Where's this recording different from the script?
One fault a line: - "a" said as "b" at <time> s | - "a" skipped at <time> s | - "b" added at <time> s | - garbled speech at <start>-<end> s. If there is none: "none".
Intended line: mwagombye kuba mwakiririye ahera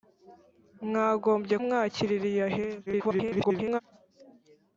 - "kuba" skipped at 1.6 s
- garbled speech at 2.9-3.8 s